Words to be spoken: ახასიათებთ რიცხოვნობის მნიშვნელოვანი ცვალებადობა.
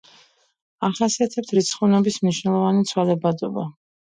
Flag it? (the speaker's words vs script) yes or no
no